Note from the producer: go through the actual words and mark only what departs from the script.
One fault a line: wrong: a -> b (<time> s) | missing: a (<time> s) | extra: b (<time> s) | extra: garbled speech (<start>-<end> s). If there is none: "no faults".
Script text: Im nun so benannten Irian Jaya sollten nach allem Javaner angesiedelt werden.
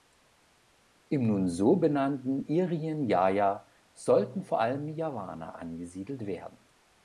wrong: nach -> vor (4.4 s)